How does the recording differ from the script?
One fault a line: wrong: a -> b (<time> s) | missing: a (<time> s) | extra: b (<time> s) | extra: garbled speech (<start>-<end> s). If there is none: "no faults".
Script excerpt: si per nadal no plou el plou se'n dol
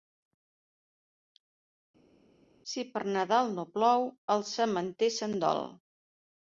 wrong: plou -> sementer (4.5 s)